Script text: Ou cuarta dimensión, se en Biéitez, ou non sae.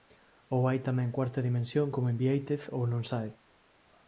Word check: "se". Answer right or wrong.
wrong